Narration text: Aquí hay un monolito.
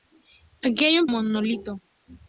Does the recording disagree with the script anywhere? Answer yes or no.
no